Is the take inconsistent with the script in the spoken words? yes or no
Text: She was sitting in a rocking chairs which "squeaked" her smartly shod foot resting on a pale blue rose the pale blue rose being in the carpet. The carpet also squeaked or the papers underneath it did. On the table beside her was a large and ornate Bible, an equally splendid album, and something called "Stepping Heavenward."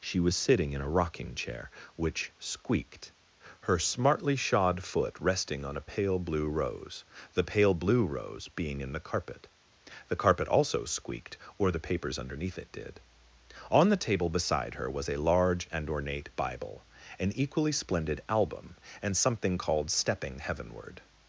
yes